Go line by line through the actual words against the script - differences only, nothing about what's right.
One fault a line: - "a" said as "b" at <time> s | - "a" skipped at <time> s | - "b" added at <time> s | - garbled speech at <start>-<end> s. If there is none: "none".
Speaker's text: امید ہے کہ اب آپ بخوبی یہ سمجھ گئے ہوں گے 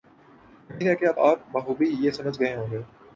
none